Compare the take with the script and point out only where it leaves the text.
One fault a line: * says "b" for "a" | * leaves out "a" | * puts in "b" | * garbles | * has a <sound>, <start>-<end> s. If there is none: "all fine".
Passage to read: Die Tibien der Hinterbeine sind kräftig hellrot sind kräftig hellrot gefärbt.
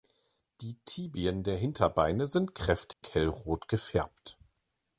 * has a dropout, 2.9-3.0 s
* leaves out "sind kräftig hellrot"